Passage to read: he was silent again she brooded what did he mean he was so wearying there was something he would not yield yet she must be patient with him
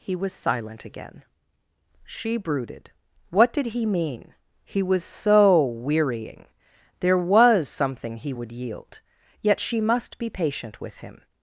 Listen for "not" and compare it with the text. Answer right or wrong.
wrong